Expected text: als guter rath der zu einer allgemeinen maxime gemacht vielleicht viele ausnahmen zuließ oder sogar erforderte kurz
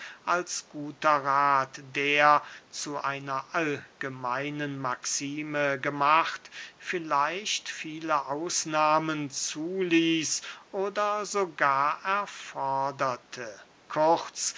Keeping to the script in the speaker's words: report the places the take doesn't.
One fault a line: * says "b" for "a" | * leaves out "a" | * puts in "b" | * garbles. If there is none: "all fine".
all fine